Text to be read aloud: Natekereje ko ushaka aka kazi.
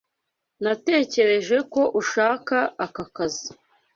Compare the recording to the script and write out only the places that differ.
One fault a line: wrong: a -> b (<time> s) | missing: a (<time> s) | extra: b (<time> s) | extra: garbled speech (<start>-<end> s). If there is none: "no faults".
no faults